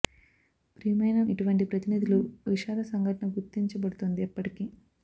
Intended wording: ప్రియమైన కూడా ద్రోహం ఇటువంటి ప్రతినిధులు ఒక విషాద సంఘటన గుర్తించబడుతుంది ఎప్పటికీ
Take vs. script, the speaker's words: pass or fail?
fail